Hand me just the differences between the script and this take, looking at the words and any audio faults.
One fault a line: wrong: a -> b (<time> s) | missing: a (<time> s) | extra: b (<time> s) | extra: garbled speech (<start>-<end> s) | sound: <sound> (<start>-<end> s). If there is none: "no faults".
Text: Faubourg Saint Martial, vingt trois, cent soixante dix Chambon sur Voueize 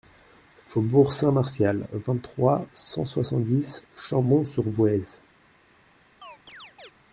sound: chirp (6.2-6.9 s)